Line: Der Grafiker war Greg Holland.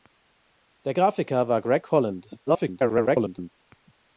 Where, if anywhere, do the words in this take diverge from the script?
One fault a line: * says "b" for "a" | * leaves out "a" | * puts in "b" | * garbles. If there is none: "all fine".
* garbles